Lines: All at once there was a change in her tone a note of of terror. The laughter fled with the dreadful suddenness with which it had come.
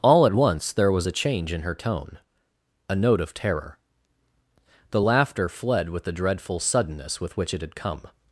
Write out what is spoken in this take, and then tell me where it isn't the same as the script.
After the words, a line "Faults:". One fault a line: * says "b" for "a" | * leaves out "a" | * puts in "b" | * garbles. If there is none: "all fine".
All at once there was a change in her tone a note of terror. The laughter fled with the dreadful suddenness with which it had come.
Faults:
* leaves out "of"